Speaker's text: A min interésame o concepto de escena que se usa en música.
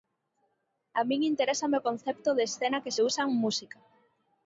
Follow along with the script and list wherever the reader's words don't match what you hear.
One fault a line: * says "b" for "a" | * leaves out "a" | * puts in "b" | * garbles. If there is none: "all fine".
all fine